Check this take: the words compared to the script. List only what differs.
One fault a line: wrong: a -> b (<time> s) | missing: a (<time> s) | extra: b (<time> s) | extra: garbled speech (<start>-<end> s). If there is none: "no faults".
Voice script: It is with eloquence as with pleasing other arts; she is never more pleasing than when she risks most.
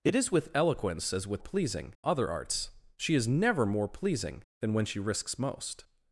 no faults